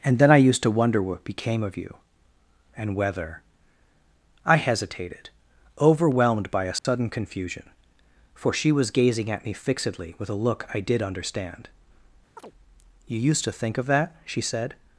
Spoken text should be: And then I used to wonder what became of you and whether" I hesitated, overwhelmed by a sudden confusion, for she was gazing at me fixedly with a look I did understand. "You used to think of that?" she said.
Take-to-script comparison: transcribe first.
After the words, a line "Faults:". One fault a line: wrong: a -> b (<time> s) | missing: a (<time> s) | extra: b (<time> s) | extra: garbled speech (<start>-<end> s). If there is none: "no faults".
And then I used to wonder what became of you and whether" I hesitated, overwhelmed by a sudden confusion, for she was gazing at me fixedly with a look I did understand. "You used to think of that?" she said.
Faults:
no faults